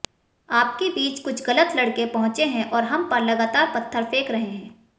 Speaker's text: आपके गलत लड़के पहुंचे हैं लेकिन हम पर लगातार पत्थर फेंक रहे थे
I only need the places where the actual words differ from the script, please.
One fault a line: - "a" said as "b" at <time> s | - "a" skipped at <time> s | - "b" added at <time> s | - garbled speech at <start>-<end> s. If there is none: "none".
- "बीच कुछ" added at 0.9 s
- "लेकिन" said as "और" at 2.7 s
- "थे" said as "हैं" at 4.4 s